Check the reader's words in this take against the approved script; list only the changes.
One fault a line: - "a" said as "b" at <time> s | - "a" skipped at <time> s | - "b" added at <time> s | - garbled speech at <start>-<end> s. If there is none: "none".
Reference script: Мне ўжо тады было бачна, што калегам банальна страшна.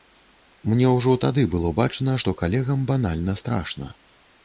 none